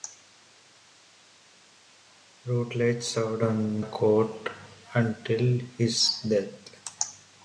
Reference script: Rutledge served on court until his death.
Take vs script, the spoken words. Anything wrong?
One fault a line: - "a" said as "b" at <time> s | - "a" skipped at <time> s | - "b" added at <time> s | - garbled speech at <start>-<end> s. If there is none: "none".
none